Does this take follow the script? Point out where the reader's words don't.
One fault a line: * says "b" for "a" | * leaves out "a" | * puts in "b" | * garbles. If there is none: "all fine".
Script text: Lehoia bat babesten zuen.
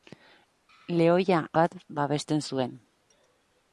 all fine